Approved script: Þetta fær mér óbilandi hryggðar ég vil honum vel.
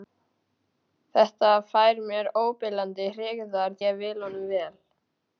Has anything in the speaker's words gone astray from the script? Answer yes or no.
no